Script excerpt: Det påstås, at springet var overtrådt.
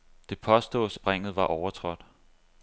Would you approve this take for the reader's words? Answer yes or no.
no